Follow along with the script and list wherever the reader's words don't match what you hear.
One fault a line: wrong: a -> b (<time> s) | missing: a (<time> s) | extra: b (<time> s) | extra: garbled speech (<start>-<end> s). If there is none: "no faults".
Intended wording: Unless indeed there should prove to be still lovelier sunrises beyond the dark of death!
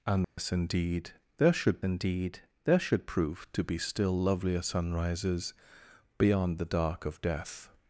extra: indeed there should (1.8 s)